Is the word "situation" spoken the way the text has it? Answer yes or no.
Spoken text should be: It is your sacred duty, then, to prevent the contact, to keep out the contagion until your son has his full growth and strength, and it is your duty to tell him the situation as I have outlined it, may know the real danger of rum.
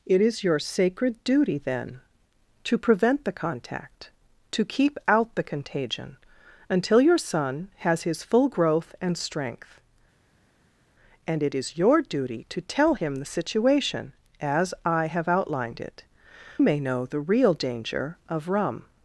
yes